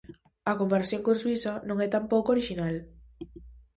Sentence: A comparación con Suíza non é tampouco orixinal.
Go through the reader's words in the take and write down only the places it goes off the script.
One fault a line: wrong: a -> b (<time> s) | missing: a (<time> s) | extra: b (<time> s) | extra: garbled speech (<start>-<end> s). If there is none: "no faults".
no faults